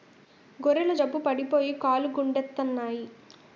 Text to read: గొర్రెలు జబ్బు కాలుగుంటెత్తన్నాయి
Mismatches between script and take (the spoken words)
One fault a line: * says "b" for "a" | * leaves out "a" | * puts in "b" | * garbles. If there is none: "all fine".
* puts in "పడిపోయి"